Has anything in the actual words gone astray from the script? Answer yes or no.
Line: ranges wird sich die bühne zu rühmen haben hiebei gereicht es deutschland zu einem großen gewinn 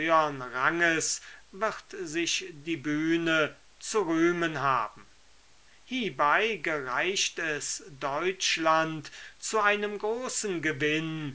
no